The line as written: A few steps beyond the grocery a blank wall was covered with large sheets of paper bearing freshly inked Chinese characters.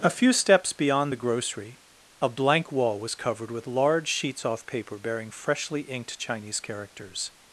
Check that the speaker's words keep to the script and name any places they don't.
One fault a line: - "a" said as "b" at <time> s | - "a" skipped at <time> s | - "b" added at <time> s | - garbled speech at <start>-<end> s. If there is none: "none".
- "of" said as "off" at 4.4 s